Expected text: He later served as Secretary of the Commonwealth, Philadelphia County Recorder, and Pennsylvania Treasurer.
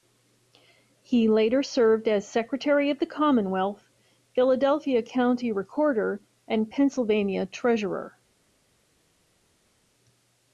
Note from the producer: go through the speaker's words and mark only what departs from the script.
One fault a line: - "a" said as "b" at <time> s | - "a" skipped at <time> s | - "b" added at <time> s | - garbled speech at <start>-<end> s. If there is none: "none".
none